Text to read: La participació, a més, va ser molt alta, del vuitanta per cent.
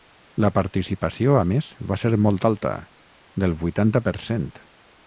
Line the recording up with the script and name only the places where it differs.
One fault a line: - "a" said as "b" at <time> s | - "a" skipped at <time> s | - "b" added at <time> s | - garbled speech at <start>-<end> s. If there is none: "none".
none